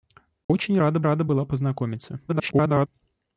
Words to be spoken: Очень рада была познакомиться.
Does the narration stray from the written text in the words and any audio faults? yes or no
yes